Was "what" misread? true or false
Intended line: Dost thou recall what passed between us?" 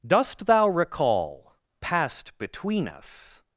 true